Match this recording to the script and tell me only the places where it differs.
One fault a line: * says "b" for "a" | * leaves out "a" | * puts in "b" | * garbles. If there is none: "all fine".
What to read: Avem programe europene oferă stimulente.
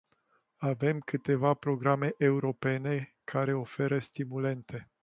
* puts in "câteva"
* puts in "care"